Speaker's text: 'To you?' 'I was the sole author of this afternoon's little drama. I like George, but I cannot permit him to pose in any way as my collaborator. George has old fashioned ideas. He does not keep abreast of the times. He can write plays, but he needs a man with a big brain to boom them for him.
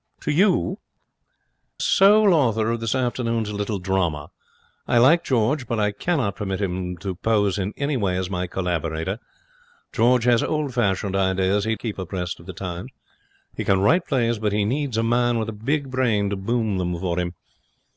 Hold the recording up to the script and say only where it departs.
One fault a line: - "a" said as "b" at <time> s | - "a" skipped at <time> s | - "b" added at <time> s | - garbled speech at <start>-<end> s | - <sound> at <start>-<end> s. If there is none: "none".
- "I was the" skipped at 0.8 s
- "does not" skipped at 11.7 s